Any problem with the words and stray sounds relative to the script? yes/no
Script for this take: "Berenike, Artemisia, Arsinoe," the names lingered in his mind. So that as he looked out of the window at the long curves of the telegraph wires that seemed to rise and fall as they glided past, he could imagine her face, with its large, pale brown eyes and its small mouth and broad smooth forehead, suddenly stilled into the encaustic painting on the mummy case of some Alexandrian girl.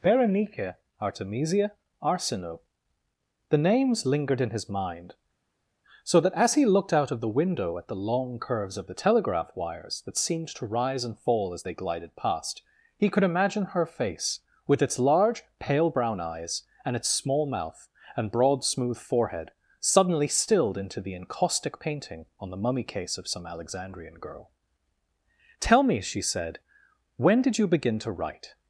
yes